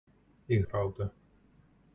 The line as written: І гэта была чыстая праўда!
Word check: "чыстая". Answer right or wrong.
wrong